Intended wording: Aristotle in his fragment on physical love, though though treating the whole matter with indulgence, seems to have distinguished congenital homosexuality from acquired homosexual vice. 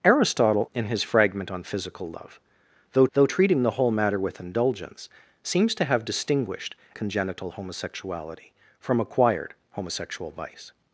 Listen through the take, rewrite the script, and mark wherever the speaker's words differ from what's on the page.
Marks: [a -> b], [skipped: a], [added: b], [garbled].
Aristotle in his fragment on physical love, though though treating the whole matter with indulgence, seems to have distinguished congenital homosexuality from acquired homosexual vice.